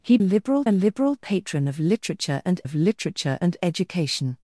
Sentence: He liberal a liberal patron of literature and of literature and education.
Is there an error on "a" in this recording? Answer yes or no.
no